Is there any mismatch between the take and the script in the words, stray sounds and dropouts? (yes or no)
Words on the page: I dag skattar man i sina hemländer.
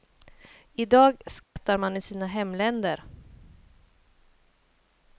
yes